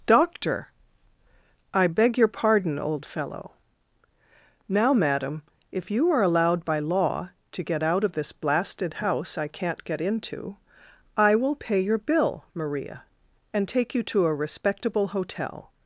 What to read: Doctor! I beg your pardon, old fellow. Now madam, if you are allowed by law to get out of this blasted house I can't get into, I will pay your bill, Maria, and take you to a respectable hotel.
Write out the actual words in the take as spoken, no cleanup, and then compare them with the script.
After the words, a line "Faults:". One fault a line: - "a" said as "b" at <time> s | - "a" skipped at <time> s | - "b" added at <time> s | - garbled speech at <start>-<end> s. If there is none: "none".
Doctor! I beg your pardon, old fellow. Now madam, if you are allowed by law to get out of this blasted house I can't get into, I will pay your bill, Maria, and take you to a respectable hotel.
Faults:
none